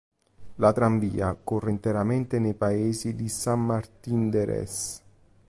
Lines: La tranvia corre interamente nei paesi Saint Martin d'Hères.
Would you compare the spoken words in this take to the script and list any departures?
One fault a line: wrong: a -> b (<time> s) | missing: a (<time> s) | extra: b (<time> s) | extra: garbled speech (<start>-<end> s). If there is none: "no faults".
extra: di (3.1 s)